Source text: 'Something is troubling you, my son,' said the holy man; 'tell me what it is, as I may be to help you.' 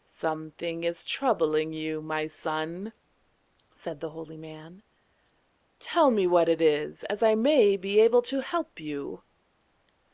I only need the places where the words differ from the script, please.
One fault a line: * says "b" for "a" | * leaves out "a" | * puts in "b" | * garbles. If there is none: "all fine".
* puts in "able"